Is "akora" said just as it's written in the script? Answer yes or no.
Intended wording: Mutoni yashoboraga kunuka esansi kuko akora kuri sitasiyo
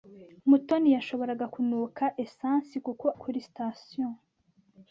no